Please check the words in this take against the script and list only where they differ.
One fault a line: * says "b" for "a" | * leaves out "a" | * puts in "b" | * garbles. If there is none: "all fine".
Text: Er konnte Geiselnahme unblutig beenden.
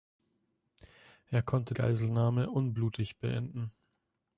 all fine